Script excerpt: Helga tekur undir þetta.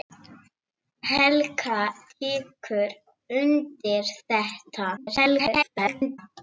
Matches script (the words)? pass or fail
fail